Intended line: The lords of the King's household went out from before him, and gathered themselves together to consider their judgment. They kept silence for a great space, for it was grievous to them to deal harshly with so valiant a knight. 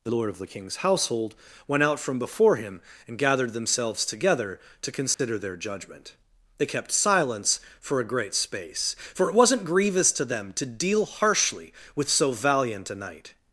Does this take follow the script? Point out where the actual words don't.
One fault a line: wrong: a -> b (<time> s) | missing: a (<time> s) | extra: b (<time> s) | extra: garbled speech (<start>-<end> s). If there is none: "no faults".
wrong: lords -> lord (0.1 s)
wrong: was -> wasn't (9.3 s)